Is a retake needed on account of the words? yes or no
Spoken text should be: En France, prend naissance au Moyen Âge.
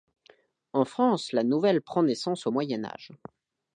yes